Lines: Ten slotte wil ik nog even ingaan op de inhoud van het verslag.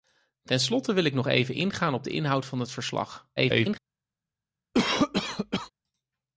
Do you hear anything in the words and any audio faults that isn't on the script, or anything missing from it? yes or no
yes